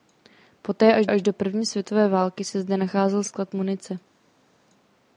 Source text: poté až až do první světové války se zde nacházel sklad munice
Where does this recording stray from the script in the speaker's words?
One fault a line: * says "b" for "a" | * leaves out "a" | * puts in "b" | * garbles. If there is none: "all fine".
all fine